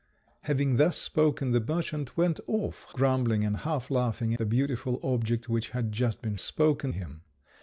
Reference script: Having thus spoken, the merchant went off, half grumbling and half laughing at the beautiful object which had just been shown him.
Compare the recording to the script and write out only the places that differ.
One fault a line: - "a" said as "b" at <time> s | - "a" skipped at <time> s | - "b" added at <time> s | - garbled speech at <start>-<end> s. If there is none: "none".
- "half" skipped at 2.9 s
- "at" skipped at 4.3 s
- "shown" said as "spoken" at 6.4 s